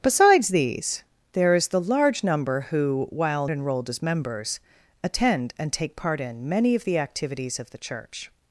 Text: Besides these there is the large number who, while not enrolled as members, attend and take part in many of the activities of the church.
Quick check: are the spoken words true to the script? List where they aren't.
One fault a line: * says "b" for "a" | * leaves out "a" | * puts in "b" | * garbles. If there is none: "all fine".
* leaves out "not"